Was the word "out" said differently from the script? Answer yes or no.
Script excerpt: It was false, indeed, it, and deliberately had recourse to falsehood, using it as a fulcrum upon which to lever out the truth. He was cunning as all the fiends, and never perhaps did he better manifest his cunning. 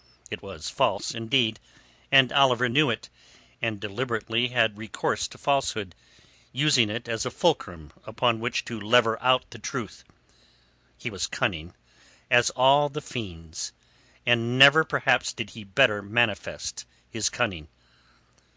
no